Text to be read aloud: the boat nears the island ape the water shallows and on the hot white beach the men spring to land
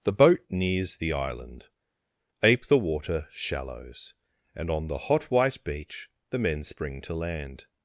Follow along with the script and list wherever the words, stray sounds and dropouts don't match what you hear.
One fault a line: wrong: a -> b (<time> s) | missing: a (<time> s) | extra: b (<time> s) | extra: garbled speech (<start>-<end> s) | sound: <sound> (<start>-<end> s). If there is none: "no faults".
no faults